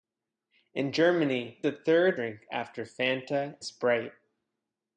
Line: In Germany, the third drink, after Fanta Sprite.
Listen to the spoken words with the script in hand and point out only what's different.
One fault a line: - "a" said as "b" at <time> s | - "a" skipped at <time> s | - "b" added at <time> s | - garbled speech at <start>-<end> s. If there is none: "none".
none